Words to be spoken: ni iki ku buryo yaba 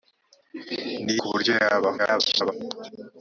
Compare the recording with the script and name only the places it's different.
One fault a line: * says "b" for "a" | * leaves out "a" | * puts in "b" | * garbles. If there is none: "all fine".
* leaves out "iki"
* garbles